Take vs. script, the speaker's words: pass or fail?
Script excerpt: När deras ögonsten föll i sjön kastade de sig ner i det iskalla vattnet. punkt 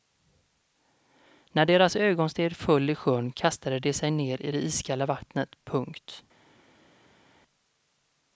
pass